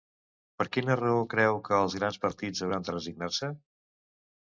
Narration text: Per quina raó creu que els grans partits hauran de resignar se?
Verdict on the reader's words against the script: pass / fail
pass